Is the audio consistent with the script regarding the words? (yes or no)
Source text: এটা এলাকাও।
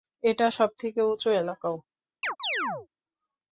no